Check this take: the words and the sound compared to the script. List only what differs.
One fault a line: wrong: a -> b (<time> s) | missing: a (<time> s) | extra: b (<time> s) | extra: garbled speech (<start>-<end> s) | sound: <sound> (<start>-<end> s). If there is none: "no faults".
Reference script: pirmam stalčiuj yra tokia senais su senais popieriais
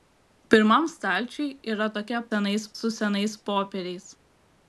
no faults